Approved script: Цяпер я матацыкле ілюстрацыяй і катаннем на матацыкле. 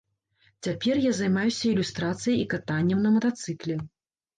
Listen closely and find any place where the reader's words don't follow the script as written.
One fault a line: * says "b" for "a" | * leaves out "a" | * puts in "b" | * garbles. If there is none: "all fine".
* says "займаюся" for "матацыкле"